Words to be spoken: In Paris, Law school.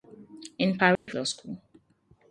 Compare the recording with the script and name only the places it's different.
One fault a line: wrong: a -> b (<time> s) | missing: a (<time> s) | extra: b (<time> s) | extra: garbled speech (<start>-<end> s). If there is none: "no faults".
no faults